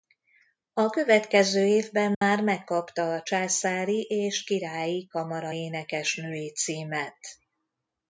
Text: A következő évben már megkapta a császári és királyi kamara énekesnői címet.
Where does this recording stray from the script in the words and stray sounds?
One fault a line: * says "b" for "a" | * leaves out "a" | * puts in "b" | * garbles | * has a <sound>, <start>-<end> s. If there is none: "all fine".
* has a dropout, 2.1-2.2 s